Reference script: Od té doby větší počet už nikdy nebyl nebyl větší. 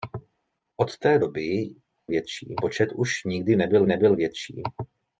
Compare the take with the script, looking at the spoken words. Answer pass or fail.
pass